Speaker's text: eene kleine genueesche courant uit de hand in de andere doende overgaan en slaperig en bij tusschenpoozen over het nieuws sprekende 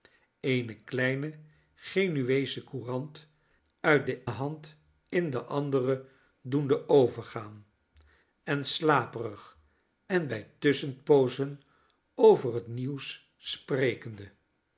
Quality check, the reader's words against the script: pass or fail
pass